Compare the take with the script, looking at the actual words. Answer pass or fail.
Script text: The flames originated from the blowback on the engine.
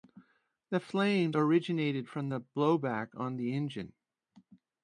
pass